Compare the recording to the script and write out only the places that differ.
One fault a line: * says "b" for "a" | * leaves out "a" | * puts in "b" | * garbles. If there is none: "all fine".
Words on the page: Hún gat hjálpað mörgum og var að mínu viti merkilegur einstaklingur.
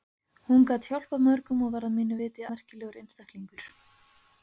all fine